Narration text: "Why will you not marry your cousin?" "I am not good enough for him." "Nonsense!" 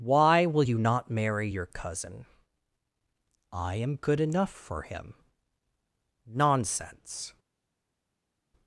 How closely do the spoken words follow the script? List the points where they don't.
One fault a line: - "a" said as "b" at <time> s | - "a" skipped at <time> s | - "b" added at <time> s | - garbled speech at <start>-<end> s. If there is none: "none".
- "not" skipped at 3.9 s